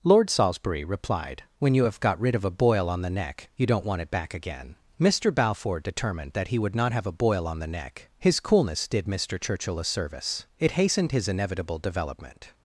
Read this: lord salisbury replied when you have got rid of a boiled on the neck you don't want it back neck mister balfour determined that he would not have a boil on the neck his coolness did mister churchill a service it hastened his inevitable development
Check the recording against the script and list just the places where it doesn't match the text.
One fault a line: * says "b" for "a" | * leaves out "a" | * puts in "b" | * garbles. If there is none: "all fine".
* says "boil" for "boiled"
* says "again" for "neck"